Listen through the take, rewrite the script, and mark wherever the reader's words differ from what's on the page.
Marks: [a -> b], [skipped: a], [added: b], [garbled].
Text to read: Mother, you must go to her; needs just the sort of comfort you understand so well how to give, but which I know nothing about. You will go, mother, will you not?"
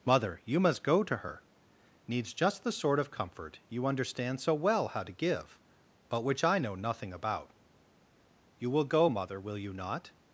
Mother, you must go to her; needs just the sort of comfort you understand so well how to give, but which I know nothing about. You will go, mother, will you not?"